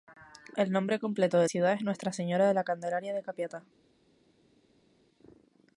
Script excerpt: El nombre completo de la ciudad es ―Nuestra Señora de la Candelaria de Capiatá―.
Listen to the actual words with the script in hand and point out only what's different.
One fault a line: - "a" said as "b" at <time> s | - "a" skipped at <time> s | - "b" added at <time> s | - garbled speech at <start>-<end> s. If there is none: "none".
- "la" skipped at 1.4 s